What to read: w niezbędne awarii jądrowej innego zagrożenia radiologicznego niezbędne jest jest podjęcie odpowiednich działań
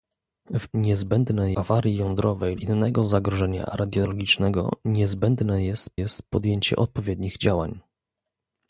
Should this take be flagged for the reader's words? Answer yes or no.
no